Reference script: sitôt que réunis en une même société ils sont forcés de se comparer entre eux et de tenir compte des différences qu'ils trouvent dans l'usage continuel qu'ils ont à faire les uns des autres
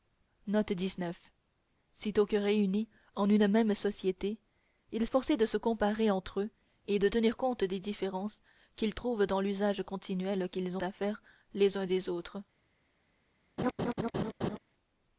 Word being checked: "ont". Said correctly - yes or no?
no